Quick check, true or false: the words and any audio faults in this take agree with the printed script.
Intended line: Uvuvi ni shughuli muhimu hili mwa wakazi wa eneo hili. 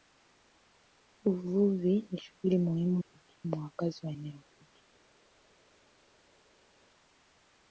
true